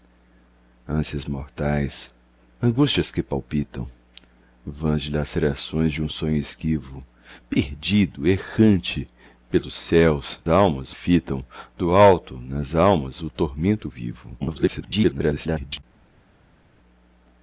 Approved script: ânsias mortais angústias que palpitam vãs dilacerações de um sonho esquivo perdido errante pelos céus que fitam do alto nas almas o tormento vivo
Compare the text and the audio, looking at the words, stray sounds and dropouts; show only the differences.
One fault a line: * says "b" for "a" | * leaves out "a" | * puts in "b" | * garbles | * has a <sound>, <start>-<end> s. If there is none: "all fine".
* says "almas" for "que"
* garbles